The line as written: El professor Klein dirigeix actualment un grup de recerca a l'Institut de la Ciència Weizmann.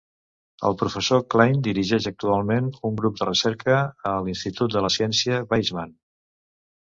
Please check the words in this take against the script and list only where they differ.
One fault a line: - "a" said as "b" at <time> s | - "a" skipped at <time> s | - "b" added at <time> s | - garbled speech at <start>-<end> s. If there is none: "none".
none